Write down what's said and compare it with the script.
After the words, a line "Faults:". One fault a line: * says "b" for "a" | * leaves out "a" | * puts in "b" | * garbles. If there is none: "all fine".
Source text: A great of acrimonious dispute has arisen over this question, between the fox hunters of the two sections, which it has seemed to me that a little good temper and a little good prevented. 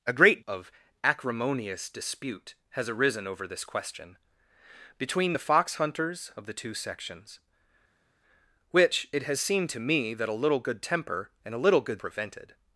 A great of acrimonious dispute has arisen over this question, between the fox hunters of the two sections, which it has seemed to me that a little good temper and a little good prevented.
Faults:
all fine